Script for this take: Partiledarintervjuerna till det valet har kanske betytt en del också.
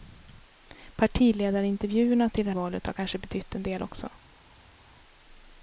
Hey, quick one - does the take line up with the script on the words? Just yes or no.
yes